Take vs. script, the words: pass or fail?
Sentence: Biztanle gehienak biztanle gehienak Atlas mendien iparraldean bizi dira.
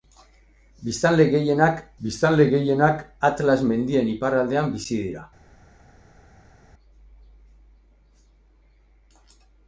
pass